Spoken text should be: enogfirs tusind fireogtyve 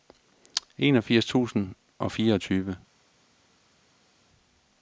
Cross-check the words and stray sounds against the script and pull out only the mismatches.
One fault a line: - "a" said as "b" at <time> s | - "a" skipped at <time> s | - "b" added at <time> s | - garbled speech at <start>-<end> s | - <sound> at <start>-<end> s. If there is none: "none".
- "og" added at 2.0 s